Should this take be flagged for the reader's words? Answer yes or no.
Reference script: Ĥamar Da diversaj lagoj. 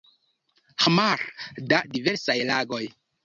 no